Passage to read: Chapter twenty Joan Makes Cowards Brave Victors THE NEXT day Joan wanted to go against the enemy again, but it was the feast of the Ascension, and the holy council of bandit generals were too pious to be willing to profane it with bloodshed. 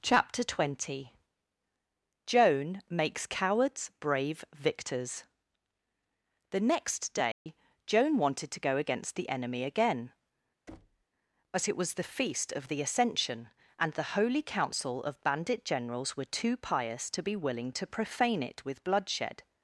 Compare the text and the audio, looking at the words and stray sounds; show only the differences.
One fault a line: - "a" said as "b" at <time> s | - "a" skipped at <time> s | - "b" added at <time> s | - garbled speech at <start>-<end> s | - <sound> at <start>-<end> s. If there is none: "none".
- dropout at 7.3-7.5 s
- thud at 10.7-11.0 s